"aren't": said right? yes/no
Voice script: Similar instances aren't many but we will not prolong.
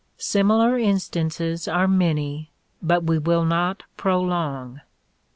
no